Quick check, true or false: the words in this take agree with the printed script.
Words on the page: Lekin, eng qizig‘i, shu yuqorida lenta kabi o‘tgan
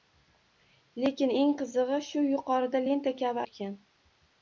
true